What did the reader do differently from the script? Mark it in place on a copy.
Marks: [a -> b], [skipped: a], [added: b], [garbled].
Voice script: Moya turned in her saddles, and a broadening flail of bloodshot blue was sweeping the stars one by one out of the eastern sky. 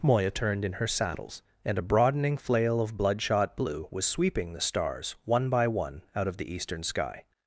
Moya turned in her saddles, and a broadening flail of bloodshot blue was sweeping the stars one by one out of the eastern sky.